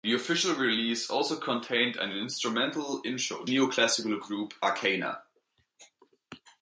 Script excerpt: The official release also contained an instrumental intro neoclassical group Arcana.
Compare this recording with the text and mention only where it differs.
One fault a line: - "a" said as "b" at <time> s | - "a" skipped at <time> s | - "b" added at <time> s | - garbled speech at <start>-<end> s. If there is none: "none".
none